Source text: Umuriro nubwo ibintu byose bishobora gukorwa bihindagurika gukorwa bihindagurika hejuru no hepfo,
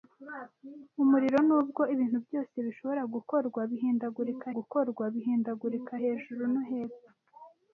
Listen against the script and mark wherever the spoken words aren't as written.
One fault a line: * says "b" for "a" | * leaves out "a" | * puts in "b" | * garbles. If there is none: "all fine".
all fine